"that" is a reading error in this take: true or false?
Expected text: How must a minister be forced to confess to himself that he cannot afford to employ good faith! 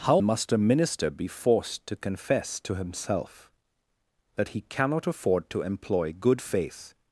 false